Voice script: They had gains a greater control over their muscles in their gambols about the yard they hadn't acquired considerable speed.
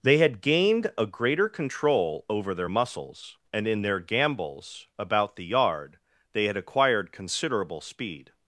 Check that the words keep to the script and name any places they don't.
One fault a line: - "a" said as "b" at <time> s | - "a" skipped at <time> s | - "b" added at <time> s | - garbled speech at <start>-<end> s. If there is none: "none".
- "gains" said as "gained" at 0.4 s
- "and" added at 3.5 s
- "hadn't" said as "had" at 6.4 s